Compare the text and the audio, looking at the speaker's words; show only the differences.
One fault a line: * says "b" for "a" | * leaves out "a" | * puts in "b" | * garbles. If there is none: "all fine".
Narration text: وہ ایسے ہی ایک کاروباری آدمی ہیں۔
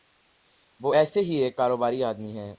all fine